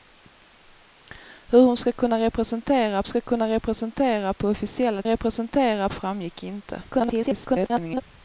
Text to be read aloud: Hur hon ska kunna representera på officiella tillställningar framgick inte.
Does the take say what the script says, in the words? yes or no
no